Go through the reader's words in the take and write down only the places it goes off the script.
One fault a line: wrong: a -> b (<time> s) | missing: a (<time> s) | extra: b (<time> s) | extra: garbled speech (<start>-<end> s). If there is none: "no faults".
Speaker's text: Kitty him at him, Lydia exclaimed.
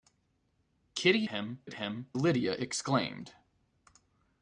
no faults